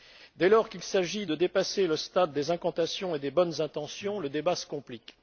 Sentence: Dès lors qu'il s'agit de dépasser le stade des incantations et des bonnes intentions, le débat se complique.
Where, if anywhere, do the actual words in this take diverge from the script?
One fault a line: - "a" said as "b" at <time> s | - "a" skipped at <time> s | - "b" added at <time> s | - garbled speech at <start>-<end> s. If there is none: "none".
none